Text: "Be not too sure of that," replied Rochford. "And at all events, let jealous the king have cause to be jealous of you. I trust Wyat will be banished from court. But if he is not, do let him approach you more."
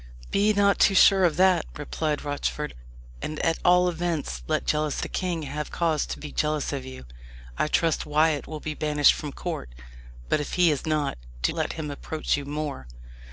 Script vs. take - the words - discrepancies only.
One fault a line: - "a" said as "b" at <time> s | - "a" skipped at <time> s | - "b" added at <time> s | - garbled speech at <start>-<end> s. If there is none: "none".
none